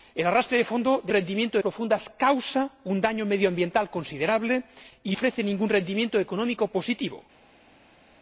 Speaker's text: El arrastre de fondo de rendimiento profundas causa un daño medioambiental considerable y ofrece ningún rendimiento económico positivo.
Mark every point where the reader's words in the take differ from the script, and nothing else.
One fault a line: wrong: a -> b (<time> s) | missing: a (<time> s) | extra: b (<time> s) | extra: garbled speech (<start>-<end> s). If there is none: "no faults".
no faults